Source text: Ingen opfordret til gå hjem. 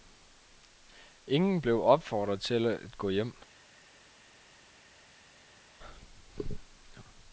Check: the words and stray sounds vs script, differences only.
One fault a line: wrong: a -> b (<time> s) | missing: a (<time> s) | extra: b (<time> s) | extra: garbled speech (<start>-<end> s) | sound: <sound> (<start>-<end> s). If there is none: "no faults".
extra: blev (1.6 s)
extra: at (2.7 s)